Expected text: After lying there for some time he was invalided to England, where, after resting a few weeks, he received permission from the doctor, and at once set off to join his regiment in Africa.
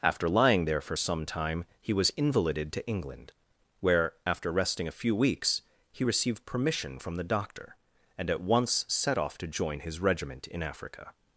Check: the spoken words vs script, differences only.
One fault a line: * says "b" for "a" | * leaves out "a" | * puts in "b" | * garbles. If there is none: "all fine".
all fine